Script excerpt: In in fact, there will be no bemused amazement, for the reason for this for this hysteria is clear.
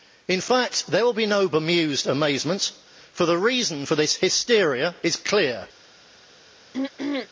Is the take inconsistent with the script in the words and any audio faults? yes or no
yes